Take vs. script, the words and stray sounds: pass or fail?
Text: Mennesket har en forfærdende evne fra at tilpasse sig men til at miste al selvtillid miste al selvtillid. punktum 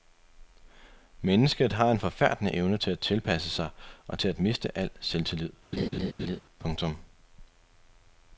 fail